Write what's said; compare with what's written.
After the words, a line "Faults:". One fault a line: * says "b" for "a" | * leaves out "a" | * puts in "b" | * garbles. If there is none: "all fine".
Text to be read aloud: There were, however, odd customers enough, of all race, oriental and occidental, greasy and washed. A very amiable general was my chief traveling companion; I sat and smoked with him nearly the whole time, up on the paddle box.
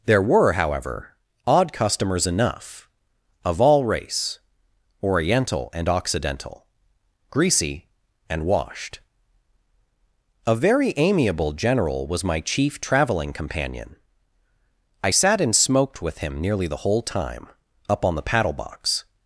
There were, however, odd customers enough, of all race, oriental and occidental, greasy and washed. A very amiable general was my chief traveling companion; I sat and smoked with him nearly the whole time, up on the paddle box.
Faults:
all fine